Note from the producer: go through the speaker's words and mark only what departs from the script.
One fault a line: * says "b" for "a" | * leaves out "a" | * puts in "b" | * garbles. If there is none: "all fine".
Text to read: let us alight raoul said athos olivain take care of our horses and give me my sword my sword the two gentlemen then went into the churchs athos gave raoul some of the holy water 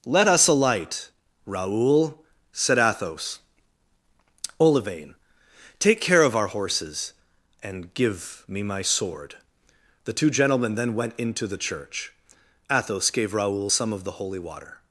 * leaves out "my sword"
* says "church" for "churchs"